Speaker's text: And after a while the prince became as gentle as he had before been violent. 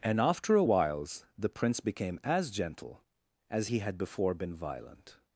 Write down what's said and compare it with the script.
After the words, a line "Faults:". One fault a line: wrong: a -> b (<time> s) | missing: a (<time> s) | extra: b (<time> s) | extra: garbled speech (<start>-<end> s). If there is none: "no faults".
And after a whiles the prince became as gentle as he had before been violent.
Faults:
wrong: while -> whiles (0.6 s)